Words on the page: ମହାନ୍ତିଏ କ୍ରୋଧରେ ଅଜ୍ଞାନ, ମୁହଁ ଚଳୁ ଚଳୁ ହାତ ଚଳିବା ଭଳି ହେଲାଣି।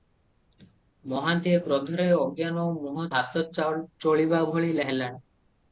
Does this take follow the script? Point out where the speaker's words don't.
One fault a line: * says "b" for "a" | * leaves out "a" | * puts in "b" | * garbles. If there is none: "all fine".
* leaves out "ଚଳୁ ଚଳୁ"